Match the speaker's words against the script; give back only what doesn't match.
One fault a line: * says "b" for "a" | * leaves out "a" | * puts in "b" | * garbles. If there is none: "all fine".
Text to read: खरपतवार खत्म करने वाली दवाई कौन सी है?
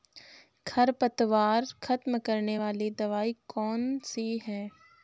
all fine